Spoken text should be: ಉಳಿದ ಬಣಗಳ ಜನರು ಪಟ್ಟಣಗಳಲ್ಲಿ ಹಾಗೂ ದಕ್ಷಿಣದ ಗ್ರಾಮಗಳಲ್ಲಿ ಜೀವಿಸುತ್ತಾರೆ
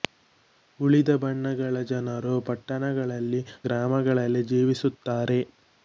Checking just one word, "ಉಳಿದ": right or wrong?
right